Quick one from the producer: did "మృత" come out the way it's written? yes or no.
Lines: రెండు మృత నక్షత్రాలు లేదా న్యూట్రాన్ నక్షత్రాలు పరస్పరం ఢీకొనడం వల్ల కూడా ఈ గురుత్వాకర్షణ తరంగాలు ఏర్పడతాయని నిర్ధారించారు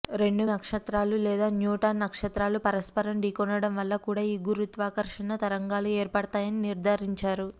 no